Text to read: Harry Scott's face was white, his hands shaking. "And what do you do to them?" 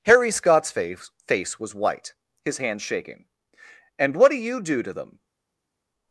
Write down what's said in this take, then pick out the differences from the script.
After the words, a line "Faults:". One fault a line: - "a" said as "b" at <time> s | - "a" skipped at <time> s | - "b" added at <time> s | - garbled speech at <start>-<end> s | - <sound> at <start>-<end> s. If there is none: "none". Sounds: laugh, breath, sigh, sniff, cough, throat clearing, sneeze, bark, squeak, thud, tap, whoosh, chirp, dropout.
Harry Scott's face face was white, his hands shaking. "And what do you do to them?"
Faults:
- "face" added at 1.3 s